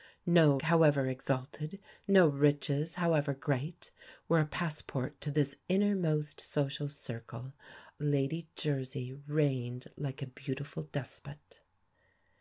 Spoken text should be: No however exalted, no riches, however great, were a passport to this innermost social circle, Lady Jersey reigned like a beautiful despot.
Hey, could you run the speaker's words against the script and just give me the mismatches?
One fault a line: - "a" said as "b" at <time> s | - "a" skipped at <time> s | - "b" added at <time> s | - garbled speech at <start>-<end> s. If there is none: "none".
none